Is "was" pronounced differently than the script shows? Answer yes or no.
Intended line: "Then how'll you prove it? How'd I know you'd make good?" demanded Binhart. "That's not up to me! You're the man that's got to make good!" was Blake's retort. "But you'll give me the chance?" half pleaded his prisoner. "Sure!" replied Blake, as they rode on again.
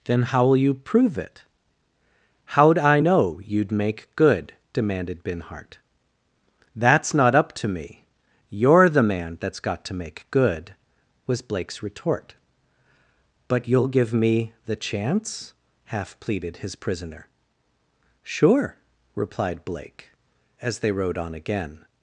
no